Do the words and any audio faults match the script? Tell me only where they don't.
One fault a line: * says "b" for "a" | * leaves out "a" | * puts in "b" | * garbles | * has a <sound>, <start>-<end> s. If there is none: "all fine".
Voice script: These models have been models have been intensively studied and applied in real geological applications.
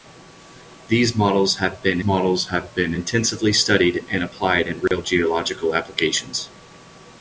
* has a dropout, 4.9-4.9 s